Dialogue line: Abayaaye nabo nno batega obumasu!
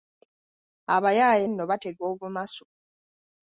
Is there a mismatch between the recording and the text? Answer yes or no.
yes